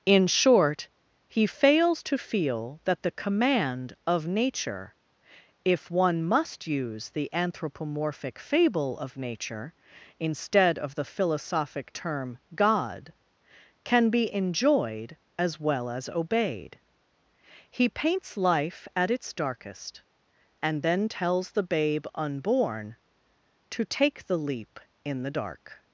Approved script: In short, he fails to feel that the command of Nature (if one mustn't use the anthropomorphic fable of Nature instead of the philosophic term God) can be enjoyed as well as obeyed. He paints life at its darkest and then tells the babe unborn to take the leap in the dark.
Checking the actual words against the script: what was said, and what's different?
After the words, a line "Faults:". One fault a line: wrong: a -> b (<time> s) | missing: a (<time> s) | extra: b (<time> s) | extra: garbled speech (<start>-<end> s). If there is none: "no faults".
In short, he fails to feel that the command of Nature (if one must use the anthropomorphic fable of Nature instead of the philosophic term God) can be enjoyed as well as obeyed. He paints life at its darkest and then tells the babe unborn to take the leap in the dark.
Faults:
wrong: mustn't -> must (6.2 s)